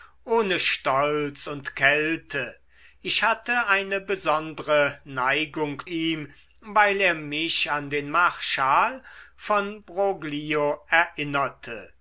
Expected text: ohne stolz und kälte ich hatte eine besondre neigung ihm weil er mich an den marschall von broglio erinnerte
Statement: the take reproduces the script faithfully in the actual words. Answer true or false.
true